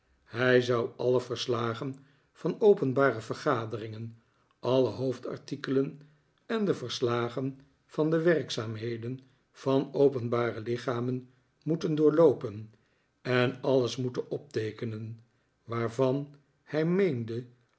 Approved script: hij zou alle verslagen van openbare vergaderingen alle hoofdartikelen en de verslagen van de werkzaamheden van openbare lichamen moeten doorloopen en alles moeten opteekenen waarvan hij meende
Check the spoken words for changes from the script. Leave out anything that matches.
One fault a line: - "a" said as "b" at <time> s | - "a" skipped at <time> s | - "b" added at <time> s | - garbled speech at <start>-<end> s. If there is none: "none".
none